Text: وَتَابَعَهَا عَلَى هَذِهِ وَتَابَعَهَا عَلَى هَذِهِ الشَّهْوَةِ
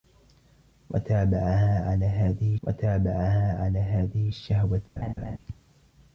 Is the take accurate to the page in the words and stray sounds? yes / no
no